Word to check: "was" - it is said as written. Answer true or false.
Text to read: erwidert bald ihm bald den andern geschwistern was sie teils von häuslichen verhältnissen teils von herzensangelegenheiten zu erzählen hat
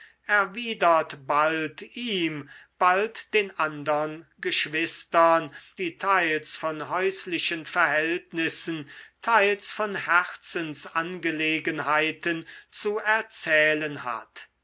false